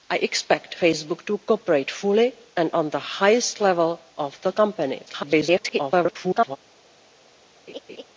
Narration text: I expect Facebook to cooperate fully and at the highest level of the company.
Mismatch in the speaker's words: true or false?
true